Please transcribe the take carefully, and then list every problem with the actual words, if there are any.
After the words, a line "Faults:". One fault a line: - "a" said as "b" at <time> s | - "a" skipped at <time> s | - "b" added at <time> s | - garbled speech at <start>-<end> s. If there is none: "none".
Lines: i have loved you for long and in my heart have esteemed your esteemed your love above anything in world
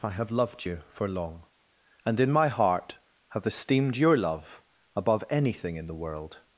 i have loved you for long and in my heart have esteemed your love above anything in the world
Faults:
- "esteemed your" skipped at 4.2 s
- "the" added at 5.9 s